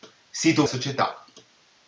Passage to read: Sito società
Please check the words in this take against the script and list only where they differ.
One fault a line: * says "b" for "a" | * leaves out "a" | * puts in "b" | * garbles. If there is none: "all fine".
all fine